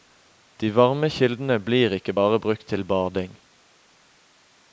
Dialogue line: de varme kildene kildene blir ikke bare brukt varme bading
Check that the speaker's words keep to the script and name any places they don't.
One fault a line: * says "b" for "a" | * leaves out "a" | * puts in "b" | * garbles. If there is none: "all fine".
* leaves out "kildene"
* says "til" for "varme"